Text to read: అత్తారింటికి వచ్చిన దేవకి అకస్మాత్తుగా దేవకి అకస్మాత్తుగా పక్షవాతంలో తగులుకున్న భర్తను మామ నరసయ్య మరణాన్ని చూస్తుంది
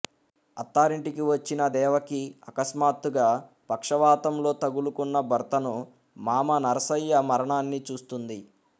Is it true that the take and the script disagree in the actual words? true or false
true